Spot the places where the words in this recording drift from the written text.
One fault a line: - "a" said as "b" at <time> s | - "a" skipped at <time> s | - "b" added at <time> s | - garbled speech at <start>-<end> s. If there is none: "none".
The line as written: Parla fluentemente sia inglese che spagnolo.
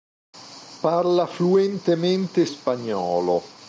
- "sia inglese che" skipped at 2.5 s